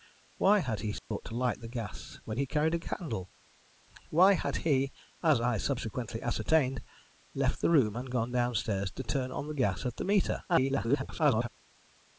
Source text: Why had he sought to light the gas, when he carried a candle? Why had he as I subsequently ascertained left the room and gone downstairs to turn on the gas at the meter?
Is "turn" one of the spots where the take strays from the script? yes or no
no